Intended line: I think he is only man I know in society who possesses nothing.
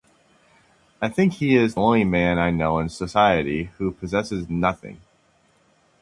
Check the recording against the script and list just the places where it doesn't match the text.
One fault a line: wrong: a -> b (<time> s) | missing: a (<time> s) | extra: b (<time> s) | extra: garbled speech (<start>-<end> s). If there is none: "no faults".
no faults